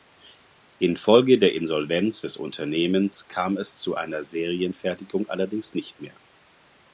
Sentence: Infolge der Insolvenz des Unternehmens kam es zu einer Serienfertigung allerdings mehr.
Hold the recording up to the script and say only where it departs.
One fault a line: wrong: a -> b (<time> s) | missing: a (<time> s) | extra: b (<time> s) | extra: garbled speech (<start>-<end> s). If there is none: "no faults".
extra: nicht (5.7 s)